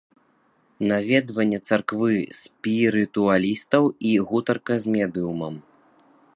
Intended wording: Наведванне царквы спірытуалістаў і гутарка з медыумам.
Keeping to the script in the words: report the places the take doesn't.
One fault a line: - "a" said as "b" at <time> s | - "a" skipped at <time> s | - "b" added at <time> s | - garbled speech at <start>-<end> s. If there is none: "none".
none